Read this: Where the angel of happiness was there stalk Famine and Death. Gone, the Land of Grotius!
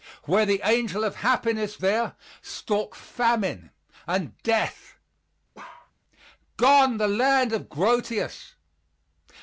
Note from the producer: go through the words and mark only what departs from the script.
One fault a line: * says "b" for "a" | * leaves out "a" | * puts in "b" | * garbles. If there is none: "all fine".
* leaves out "was"